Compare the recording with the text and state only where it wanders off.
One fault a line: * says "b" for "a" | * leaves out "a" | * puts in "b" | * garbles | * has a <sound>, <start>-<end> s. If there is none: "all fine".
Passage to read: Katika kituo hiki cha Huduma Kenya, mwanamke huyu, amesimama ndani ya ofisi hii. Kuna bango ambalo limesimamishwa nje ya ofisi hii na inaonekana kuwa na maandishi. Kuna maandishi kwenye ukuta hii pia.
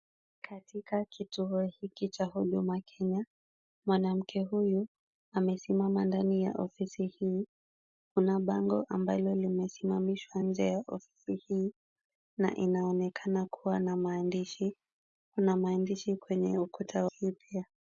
all fine